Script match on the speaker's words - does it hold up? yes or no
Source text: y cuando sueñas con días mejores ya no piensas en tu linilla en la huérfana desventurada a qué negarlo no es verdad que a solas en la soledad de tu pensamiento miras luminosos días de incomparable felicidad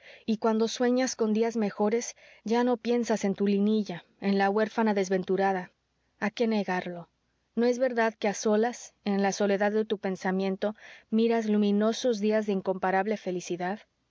yes